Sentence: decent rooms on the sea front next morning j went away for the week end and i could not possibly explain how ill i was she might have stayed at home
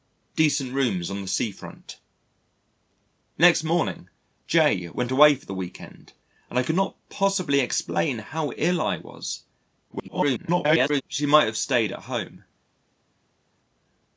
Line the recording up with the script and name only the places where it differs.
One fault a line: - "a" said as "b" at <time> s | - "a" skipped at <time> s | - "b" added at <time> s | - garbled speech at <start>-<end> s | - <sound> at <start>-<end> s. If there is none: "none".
- garbled speech at 9.9-11.0 s